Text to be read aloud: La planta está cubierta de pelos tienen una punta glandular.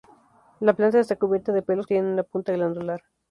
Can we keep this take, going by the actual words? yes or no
yes